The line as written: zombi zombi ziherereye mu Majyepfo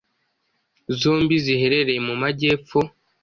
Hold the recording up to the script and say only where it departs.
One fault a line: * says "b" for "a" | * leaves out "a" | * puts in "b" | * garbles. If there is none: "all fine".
* leaves out "zombi"